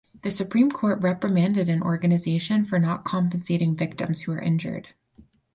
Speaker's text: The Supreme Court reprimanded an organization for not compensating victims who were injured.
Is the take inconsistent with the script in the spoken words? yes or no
no